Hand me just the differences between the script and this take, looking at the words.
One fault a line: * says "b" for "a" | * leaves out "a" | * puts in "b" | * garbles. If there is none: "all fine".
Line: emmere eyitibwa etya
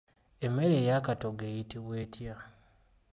* puts in "ey'akatogo"